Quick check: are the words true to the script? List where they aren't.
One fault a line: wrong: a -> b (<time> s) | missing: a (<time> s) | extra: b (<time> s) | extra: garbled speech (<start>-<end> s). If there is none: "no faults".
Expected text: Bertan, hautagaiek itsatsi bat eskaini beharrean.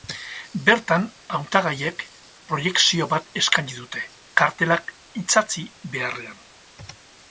wrong: itsatsi -> proiekzio (2.5 s)
extra: dute kartelak itsatsi (3.8 s)